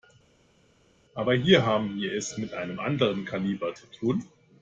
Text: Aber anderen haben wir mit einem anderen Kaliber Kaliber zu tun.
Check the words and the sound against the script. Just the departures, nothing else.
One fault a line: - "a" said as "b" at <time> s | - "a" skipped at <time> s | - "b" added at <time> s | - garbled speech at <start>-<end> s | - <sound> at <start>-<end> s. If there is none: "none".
- "anderen" said as "hier" at 1.3 s
- "es" added at 2.1 s
- "Kaliber" skipped at 3.7 s